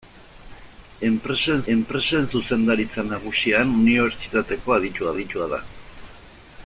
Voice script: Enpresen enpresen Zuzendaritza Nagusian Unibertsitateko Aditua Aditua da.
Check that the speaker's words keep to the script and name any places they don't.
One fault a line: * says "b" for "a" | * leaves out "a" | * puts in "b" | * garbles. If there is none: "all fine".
all fine